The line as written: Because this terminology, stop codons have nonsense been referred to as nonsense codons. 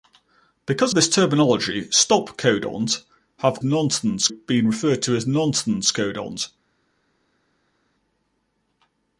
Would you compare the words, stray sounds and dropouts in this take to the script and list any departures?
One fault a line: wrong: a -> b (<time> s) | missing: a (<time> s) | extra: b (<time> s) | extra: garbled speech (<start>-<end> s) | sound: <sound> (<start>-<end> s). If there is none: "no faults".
no faults